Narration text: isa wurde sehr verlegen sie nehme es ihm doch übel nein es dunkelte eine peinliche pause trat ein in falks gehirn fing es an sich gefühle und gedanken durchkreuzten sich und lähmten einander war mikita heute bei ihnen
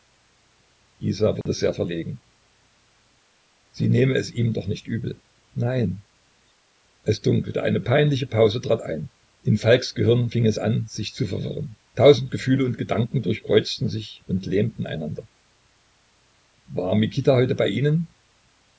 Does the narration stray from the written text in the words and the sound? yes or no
yes